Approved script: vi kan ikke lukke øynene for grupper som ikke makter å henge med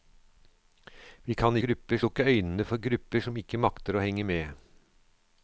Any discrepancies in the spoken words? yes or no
yes